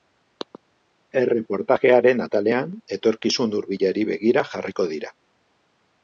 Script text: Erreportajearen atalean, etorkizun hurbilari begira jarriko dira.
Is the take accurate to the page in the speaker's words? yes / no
yes